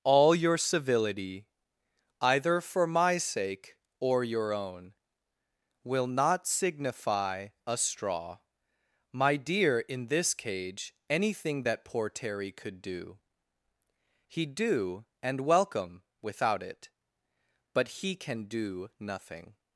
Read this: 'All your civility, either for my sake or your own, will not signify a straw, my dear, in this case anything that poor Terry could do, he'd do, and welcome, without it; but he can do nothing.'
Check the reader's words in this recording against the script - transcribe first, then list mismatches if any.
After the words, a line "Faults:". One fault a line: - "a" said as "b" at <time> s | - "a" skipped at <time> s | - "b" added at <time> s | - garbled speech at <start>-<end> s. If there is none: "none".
'All your civility, either for my sake or your own, will not signify a straw, my dear, in this cage anything that poor Terry could do, he'd do, and welcome, without it; but he can do nothing.'
Faults:
- "case" said as "cage" at 10.3 s